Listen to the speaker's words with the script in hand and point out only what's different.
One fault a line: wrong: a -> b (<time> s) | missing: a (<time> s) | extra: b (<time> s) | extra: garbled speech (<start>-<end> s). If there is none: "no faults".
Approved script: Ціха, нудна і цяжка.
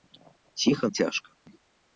missing: нудна і (0.9 s)